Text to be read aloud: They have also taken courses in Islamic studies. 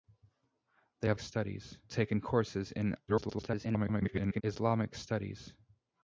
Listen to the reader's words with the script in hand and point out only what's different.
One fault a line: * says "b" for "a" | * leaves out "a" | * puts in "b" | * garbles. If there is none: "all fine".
* says "studies" for "also"
* garbles